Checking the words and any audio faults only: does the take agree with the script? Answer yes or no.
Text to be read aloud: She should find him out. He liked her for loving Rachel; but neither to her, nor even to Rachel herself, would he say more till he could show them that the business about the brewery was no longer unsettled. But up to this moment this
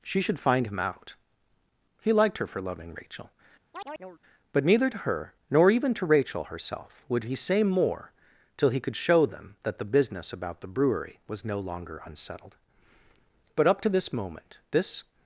no